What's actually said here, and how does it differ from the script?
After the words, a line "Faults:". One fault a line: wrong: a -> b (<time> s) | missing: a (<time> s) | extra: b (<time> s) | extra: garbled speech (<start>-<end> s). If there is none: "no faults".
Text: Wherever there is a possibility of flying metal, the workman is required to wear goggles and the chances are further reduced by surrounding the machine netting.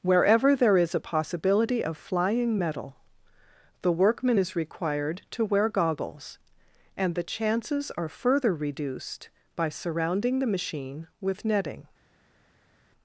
Wherever there is a possibility of flying metal, the workman is required to wear goggles and the chances are further reduced by surrounding the machine with netting.
Faults:
extra: with (11.2 s)